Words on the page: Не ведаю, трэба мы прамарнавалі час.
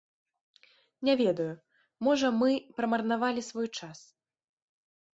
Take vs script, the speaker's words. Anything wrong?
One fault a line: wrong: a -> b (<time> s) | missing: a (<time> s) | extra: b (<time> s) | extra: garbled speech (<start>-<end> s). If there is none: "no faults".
wrong: трэба -> можа (2.1 s)
extra: свой (3.5 s)